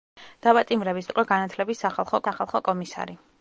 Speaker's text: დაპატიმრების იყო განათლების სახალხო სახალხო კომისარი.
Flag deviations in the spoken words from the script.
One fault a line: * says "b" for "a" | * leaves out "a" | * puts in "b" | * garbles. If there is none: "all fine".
all fine